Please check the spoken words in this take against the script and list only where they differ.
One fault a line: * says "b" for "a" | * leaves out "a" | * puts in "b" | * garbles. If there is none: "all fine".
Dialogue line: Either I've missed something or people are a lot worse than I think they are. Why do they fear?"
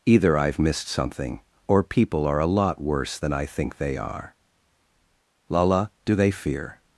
* says "Lala" for "Why"